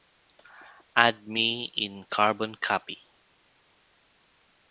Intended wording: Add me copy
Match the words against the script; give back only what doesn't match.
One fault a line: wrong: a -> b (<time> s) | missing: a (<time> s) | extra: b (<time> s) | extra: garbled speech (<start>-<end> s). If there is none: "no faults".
extra: in carbon (1.8 s)